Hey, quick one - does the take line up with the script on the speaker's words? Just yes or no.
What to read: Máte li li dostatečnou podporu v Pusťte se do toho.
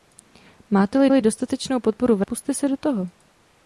yes